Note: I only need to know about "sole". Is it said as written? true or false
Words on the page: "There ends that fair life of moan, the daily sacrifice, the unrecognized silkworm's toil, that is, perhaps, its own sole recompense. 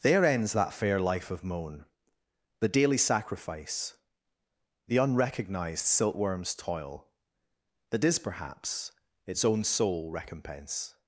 true